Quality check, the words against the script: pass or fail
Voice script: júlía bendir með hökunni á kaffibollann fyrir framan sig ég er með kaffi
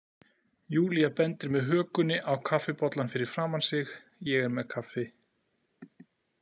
pass